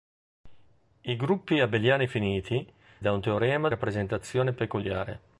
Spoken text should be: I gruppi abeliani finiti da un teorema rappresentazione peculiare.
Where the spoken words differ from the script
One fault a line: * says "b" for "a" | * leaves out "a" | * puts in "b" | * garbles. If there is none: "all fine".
all fine